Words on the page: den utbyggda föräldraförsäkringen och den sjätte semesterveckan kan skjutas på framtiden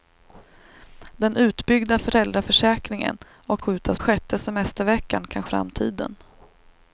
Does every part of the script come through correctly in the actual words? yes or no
no